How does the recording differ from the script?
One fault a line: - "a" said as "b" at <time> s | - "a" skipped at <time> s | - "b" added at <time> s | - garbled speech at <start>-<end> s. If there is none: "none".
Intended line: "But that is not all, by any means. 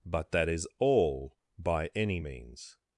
- "not" skipped at 0.7 s